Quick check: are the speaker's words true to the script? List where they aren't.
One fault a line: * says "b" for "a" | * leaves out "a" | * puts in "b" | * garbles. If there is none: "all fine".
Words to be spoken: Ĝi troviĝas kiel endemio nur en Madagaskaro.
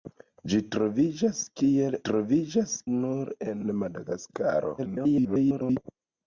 * says "troviĝas" for "endemio"
* garbles